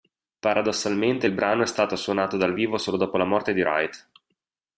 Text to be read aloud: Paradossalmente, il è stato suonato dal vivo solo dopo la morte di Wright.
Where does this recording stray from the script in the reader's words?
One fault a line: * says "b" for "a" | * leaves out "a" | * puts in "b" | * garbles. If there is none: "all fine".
* puts in "brano"